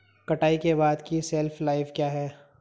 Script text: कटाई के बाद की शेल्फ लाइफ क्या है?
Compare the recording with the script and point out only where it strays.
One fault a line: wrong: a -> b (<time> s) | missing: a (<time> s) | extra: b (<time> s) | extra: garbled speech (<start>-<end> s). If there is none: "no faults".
no faults